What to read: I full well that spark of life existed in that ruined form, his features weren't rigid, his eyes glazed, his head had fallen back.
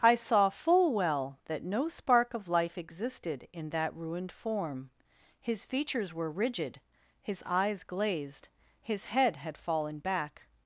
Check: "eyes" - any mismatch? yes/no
no